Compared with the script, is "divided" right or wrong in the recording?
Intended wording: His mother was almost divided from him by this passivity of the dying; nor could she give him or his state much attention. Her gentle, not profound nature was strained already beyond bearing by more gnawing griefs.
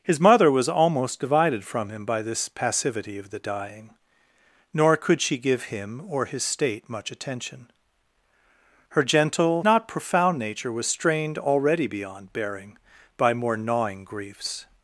right